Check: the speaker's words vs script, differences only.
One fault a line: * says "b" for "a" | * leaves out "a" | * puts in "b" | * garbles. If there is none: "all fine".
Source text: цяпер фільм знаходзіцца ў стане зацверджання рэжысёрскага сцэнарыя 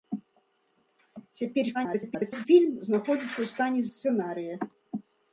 * garbles
* leaves out "зацверджання рэжысёрскага"